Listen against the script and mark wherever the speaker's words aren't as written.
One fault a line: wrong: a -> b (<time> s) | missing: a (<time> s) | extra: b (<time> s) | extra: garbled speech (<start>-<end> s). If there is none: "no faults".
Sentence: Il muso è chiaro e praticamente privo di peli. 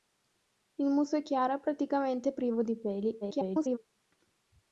extra: garbled speech (3.2-3.8 s)